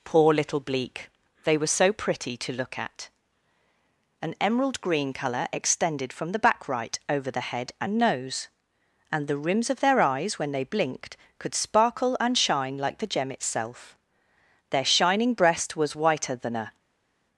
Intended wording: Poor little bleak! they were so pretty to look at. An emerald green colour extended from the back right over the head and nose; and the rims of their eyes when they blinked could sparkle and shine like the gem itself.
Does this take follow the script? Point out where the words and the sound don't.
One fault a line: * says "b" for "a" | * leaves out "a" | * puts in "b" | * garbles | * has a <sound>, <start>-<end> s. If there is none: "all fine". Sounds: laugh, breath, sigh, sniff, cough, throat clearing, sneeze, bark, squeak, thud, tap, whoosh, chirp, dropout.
* puts in "Their shining breast was whiter than a"